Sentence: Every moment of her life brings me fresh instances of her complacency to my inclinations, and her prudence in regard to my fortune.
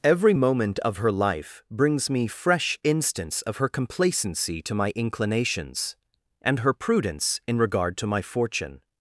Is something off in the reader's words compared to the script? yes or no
yes